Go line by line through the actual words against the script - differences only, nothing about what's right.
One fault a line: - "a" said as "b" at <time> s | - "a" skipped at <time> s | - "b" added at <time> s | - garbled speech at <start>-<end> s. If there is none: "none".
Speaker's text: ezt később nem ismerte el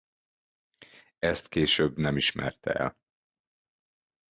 none